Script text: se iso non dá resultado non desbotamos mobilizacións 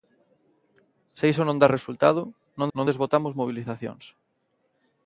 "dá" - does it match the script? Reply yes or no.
yes